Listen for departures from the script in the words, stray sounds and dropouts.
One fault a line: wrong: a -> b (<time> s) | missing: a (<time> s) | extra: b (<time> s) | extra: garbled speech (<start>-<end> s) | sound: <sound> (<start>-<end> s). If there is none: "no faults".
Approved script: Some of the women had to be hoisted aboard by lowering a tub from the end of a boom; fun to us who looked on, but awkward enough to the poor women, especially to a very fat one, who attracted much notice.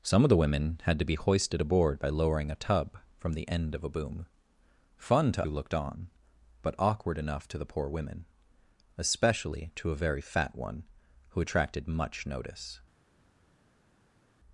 missing: us (5.5 s)